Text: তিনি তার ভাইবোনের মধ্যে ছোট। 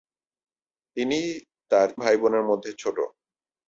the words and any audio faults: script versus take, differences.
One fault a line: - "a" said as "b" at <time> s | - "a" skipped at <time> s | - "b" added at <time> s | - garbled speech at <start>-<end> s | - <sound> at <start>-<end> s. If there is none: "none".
none